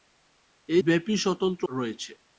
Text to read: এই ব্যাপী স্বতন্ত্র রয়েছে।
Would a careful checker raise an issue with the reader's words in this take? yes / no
no